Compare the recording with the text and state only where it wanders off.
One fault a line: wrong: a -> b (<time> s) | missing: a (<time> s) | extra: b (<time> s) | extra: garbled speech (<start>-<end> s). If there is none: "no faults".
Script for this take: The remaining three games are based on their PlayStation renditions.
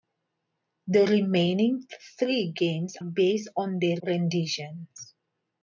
missing: are (3.0 s)
missing: PlayStation (4.0 s)